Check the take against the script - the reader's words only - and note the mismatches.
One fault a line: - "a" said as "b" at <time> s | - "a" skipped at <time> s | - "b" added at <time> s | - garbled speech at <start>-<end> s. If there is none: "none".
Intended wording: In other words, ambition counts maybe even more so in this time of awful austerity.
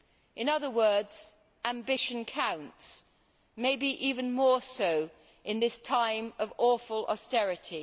none